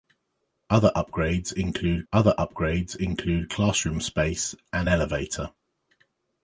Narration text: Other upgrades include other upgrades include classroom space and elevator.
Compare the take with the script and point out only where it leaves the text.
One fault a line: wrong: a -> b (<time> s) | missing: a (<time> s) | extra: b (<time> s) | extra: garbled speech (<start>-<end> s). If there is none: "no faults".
no faults